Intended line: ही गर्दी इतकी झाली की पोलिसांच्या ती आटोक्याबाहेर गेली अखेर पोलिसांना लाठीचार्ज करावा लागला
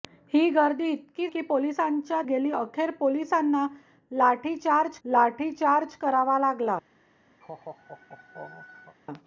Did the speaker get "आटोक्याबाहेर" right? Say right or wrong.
wrong